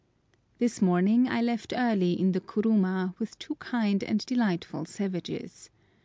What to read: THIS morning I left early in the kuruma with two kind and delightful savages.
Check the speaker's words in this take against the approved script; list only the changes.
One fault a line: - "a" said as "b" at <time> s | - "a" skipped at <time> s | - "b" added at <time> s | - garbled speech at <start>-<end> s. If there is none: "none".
none